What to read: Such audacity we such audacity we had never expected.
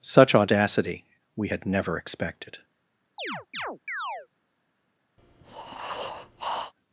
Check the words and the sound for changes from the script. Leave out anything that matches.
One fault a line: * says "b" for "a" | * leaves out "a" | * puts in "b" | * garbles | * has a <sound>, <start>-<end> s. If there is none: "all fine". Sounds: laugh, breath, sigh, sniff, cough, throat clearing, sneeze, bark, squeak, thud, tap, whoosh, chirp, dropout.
* leaves out "such audacity we"
* has a chirp, 3.2-4.3 s
* has a breath, 5.2-6.7 s